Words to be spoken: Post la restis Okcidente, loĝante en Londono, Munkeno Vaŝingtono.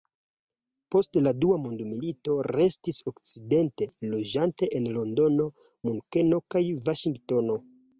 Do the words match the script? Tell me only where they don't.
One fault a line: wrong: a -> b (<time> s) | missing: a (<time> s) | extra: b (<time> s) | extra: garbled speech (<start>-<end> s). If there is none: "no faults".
extra: dua mondmilito (1.4 s)
extra: kaj (6.5 s)